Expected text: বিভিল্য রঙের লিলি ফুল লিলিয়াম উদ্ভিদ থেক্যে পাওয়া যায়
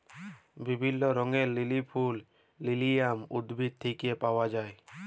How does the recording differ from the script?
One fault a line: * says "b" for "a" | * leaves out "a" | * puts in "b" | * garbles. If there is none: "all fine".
all fine